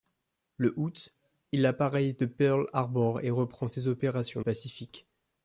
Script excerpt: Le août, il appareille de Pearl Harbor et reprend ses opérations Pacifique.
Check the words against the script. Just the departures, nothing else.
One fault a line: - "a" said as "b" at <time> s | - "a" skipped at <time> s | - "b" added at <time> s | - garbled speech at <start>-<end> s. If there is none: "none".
none